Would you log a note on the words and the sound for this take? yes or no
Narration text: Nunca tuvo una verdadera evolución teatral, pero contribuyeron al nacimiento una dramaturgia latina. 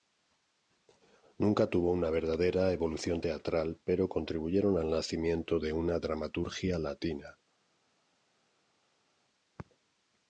yes